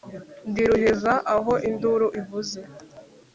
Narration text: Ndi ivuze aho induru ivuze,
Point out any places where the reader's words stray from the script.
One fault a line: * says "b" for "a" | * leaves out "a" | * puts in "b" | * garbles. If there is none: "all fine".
* says "ruheza" for "ivuze"